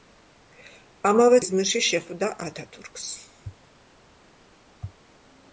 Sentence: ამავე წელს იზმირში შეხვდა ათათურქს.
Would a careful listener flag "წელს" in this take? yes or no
yes